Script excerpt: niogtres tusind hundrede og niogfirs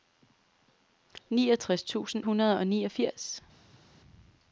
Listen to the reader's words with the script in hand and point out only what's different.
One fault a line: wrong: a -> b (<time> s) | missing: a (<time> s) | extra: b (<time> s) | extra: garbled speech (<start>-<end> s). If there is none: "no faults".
no faults